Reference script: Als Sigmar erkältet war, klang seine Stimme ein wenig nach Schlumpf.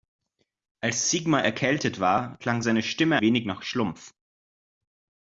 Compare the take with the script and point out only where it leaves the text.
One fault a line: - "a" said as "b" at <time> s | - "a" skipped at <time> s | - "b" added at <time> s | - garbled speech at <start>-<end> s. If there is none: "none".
- "ein" skipped at 3.2 s